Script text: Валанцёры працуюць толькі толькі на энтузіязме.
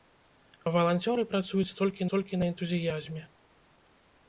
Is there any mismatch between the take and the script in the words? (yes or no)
no